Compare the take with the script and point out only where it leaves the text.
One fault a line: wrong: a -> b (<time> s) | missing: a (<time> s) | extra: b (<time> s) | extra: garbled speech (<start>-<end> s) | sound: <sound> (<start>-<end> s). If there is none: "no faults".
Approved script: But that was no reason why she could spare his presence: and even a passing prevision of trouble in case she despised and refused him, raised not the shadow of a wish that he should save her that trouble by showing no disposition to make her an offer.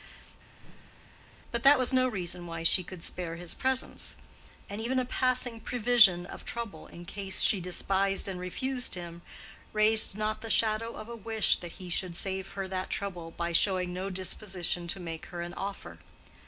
sound: whoosh (0.6-1.3 s)